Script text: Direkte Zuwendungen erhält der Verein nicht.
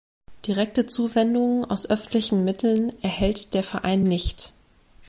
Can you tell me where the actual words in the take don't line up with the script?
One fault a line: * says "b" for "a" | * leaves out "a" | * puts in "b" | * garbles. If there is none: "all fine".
* puts in "aus öffentlichen Mitteln"